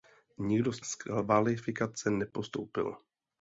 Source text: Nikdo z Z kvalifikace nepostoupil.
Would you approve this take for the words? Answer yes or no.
yes